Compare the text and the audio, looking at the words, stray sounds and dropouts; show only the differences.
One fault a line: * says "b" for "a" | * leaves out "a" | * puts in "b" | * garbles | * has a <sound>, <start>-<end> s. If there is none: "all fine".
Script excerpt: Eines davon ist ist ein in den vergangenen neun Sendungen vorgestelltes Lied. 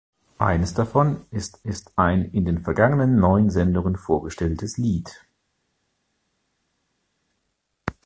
all fine